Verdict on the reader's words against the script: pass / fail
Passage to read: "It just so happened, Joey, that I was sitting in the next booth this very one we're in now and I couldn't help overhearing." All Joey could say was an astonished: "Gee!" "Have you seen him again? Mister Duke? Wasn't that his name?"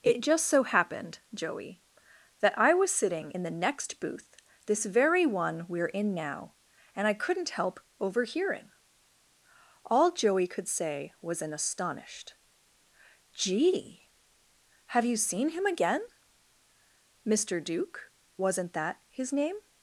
pass